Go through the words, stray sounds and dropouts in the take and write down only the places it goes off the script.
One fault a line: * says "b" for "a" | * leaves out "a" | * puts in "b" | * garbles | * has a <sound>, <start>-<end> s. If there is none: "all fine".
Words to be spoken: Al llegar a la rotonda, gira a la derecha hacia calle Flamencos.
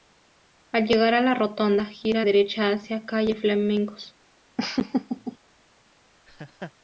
* leaves out "la"
* has a laugh, 4.6-5.4 s
* has a laugh, 6.3-6.7 s